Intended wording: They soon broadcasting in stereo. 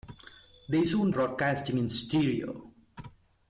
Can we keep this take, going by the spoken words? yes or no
yes